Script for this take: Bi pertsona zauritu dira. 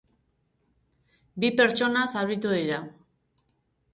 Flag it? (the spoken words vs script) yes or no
no